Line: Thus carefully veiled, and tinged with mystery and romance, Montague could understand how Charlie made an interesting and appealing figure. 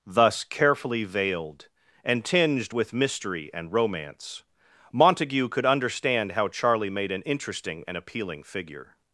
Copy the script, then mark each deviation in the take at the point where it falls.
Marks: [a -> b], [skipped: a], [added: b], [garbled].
Thus carefully veiled, and tinged with mystery and romance, Montague could understand how Charlie made an interesting and appealing figure.